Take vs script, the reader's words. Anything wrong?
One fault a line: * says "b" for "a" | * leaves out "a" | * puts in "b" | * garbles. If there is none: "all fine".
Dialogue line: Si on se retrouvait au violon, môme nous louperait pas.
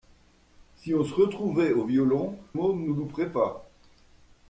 all fine